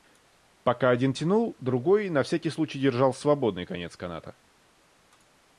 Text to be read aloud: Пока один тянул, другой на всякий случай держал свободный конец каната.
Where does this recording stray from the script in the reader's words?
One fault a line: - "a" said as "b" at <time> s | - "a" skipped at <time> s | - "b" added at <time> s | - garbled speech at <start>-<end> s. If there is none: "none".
none